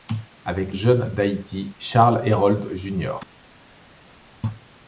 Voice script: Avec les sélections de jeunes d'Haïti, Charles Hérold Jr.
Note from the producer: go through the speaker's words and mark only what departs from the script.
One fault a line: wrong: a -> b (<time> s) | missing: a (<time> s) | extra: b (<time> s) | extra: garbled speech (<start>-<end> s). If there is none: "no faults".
missing: les sélections de (0.7 s)